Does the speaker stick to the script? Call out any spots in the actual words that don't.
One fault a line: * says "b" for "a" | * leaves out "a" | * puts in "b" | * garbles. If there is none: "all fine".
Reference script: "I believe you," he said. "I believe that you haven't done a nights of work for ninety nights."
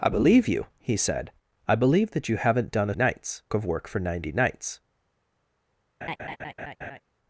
all fine